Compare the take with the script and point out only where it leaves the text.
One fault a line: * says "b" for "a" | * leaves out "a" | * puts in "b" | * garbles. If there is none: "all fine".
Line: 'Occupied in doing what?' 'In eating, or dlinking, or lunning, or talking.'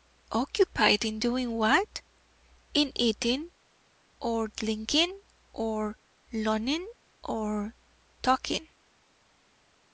all fine